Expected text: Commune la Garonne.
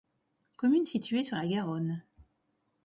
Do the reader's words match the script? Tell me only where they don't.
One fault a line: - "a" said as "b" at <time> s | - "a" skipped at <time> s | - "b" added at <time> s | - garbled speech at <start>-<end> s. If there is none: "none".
- "située sur" added at 0.8 s